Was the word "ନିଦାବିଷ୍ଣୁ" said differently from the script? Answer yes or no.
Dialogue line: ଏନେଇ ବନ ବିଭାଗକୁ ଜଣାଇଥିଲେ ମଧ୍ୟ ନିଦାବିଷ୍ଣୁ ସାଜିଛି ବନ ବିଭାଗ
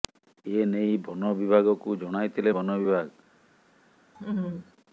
yes